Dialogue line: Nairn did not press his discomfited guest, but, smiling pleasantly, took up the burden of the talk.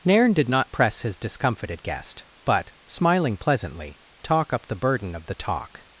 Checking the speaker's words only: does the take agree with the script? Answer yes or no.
no